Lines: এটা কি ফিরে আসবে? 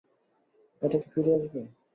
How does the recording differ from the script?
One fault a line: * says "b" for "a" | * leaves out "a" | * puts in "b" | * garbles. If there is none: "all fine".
all fine